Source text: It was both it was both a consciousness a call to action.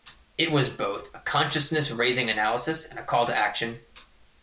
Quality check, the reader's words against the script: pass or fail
fail